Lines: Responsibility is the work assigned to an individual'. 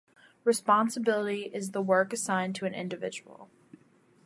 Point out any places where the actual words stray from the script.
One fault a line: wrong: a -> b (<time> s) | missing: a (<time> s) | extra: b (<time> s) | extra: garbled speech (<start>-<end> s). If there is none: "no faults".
no faults